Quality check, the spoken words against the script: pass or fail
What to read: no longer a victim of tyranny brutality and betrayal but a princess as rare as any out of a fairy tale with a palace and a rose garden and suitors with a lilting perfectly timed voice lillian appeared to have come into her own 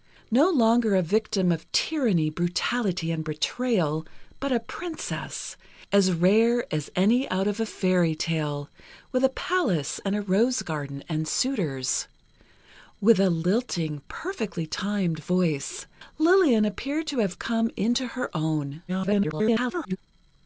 fail